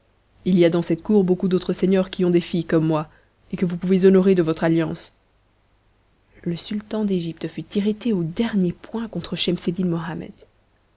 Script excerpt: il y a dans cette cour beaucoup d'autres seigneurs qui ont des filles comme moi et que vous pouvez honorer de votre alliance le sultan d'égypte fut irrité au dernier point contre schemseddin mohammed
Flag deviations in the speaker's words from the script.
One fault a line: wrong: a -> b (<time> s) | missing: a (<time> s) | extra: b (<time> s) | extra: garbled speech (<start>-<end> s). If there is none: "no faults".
no faults